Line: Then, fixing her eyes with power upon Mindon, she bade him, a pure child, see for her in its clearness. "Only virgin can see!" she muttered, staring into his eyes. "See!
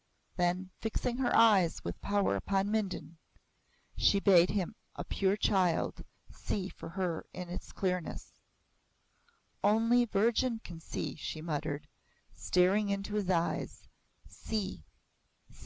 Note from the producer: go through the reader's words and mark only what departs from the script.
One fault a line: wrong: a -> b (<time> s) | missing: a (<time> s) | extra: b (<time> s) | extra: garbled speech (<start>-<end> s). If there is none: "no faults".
no faults